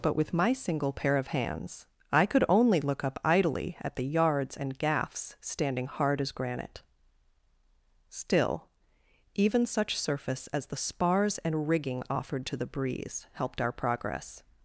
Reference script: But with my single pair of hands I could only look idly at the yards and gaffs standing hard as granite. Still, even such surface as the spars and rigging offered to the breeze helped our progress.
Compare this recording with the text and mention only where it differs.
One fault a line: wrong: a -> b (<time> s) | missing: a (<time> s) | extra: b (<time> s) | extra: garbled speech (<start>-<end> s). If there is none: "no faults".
extra: up (3.0 s)